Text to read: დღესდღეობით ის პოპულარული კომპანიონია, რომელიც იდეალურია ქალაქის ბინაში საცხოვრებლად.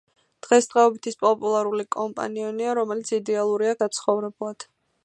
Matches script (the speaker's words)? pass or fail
fail